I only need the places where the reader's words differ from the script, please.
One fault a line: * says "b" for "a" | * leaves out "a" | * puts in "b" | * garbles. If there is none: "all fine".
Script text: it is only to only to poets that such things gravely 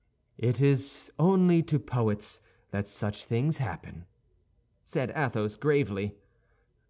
* leaves out "only to"
* puts in "happen said athos"